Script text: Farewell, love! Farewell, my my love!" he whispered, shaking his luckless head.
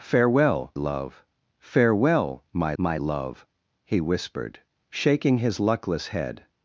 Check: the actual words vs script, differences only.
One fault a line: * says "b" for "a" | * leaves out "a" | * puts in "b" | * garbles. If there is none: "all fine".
all fine